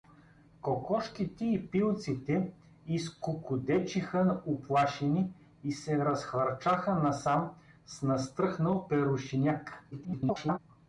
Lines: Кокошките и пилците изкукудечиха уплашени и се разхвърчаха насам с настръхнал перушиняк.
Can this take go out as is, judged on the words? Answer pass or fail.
fail